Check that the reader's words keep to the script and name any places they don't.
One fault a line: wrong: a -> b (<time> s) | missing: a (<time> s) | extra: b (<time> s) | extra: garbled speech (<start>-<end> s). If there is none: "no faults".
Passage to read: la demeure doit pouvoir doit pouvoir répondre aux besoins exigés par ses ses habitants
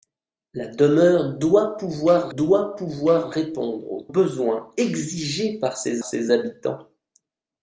no faults